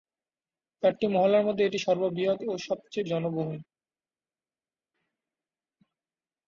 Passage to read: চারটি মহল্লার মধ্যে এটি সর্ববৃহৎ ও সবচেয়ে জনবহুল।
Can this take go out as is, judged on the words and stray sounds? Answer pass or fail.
pass